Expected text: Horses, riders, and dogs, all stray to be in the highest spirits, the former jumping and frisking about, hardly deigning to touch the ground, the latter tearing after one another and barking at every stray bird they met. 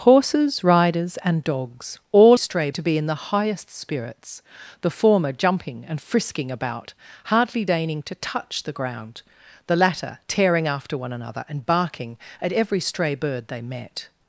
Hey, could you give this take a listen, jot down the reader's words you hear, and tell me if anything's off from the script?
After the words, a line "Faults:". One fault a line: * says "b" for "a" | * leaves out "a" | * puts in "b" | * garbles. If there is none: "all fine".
Horses, riders, and dogs, all stray to be in the highest spirits, the former jumping and frisking about, hardly deigning to touch the ground, the latter tearing after one another and barking at every stray bird they met.
Faults:
all fine